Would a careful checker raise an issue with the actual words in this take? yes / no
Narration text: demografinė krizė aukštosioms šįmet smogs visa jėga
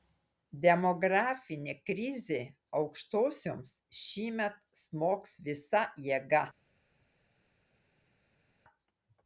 no